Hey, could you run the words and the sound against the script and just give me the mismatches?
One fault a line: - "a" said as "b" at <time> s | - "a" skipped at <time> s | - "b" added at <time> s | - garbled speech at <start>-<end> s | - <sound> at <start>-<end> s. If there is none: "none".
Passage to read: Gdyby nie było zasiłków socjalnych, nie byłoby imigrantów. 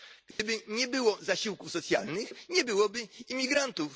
- dropout at 0.3-0.4 s